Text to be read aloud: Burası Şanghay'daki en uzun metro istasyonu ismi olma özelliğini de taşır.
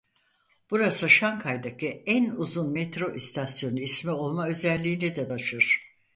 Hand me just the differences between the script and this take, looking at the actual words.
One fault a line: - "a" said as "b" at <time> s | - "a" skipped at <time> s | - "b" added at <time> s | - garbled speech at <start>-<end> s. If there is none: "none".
none